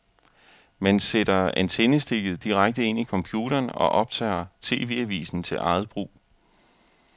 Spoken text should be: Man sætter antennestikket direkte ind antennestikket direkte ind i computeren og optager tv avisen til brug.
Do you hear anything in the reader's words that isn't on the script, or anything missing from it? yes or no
yes